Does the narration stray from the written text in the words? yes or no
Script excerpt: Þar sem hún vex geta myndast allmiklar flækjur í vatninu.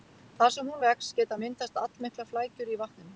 no